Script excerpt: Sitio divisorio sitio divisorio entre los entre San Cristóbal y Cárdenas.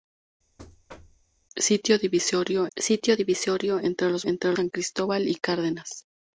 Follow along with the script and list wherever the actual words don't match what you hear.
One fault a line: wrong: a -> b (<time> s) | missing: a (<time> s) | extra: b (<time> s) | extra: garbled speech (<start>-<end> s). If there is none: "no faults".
no faults